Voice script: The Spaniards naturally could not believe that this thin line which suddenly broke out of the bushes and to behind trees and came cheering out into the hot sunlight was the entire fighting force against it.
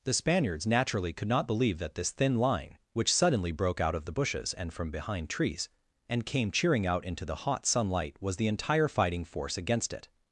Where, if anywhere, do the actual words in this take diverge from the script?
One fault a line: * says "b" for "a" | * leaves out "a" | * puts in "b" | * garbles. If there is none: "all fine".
* says "from" for "to"